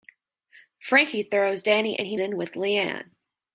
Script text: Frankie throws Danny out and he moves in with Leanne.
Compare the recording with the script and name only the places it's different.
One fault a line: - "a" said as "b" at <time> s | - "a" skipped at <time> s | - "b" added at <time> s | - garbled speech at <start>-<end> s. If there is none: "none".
- "out" skipped at 1.9 s
- "moves" skipped at 2.2 s